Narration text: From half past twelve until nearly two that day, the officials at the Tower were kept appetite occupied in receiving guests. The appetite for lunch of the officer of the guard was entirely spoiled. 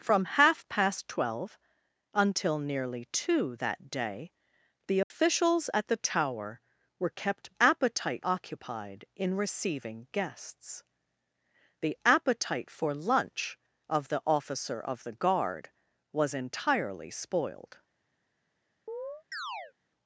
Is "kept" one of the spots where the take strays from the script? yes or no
no